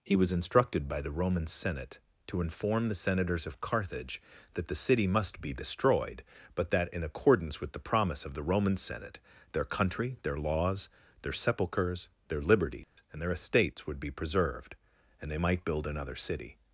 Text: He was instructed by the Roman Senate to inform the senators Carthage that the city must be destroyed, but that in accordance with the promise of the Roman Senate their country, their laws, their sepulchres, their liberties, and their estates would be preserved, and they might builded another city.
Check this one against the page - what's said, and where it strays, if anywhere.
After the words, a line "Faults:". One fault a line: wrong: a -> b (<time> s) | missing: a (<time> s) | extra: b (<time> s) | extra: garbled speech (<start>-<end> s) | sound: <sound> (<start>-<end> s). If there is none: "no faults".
He was instructed by the Roman Senate to inform the senators of Carthage that the city must be destroyed, but that in accordance with the promise of the Roman Senate their country, their laws, their sepulchres, their liberties, and their estates would be preserved, and they might build another city.
Faults:
extra: of (3.5 s)
sound: dropout (12.8-13.0 s)
wrong: builded -> build (15.7 s)